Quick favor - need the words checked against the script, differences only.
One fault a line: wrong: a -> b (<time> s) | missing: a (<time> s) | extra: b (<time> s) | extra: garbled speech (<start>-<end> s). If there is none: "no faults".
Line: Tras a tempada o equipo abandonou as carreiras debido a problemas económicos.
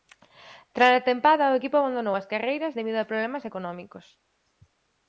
no faults